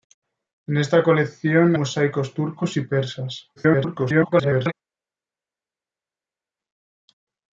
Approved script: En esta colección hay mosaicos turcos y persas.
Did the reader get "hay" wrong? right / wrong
wrong